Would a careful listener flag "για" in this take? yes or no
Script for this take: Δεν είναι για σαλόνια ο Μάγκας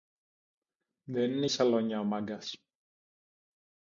yes